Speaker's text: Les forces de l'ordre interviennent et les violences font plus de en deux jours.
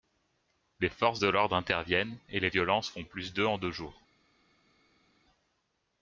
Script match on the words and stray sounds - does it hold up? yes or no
yes